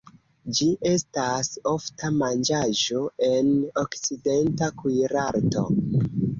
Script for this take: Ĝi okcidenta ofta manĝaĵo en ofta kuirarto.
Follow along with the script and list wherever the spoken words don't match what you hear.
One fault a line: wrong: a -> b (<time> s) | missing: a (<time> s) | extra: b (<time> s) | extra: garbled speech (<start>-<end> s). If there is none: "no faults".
wrong: okcidenta -> estas (0.9 s)
wrong: ofta -> okcidenta (3.9 s)